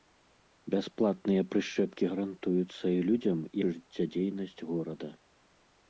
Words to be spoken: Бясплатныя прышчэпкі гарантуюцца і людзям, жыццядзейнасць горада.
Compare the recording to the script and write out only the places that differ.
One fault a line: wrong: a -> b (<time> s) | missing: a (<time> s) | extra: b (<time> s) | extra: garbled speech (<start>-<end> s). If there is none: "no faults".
no faults